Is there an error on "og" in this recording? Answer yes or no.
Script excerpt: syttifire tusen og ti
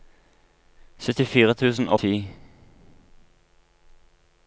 no